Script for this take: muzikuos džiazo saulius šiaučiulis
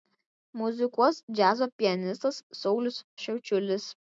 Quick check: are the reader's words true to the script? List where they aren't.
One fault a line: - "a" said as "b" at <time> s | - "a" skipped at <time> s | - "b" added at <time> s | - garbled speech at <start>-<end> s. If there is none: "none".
- "pianistas" added at 1.8 s